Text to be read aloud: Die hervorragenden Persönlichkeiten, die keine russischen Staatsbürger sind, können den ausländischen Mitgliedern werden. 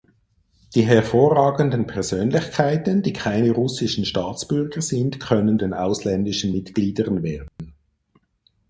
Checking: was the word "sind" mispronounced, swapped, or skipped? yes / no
no